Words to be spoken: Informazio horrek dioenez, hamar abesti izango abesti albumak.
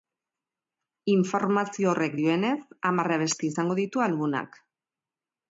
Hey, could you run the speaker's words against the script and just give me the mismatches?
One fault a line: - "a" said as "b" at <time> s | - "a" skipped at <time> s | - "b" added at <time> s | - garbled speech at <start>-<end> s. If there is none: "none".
- "abesti" said as "ditu" at 3.8 s